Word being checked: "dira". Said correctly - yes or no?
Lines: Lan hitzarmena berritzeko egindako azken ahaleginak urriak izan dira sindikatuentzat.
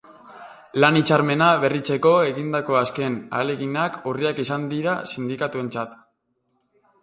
yes